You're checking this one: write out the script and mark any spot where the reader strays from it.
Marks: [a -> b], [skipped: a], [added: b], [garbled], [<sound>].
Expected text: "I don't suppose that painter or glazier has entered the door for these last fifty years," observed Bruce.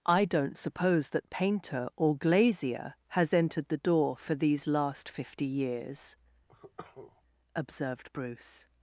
"I don't suppose that painter or glazier has entered the door for these last fifty years," [cough] observed Bruce.